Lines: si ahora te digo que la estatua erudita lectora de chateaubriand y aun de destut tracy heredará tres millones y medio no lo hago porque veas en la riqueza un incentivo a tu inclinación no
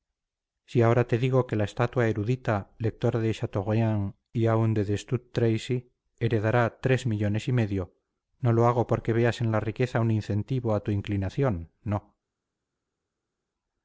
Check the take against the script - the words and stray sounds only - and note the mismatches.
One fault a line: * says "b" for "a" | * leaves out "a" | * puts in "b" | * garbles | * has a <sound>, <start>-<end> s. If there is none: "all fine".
all fine